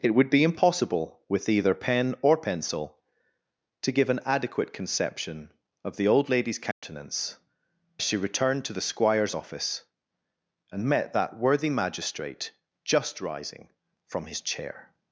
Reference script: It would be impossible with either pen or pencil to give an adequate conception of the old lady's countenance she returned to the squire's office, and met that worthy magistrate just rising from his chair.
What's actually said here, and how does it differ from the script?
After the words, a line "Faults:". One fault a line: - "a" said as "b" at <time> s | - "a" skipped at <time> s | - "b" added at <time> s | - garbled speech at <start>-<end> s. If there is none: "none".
It would be impossible with either pen or pencil to give an adequate conception of the old lady's countenance she returned to the squire's office, and met that worthy magistrate just rising from his chair.
Faults:
none